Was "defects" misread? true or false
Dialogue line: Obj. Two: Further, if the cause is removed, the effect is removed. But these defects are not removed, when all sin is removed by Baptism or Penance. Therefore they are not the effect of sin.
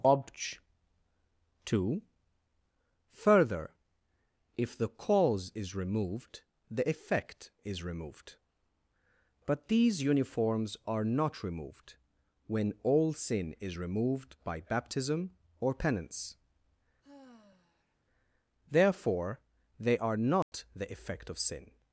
true